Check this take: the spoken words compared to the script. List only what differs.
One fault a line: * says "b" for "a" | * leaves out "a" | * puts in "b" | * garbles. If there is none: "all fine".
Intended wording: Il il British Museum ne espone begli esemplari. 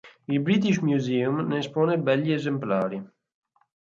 * leaves out "il"